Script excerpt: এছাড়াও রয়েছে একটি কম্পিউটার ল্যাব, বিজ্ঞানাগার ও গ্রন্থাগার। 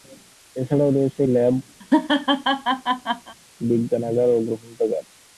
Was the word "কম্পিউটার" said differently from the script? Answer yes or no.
yes